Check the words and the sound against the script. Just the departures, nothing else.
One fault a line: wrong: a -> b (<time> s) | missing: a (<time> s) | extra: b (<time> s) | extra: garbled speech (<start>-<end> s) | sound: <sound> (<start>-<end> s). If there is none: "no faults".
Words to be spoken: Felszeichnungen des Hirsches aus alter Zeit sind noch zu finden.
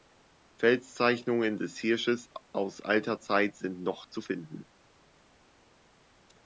no faults